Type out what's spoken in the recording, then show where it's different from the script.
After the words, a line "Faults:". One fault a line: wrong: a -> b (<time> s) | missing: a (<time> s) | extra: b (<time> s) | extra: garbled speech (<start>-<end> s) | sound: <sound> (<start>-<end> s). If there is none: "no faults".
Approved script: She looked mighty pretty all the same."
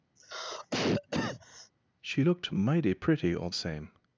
She looked mighty pretty all same."
Faults:
sound: cough (0.2-1.7 s)
missing: the (3.5 s)